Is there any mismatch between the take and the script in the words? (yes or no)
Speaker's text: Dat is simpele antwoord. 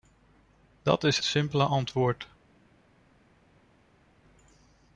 no